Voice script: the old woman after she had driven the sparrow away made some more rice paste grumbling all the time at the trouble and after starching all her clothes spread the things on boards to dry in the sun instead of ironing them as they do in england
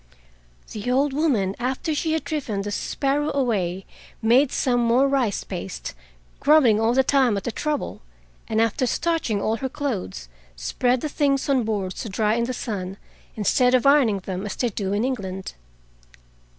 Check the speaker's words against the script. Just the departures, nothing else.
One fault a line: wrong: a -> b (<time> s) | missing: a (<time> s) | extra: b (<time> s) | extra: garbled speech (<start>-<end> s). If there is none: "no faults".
no faults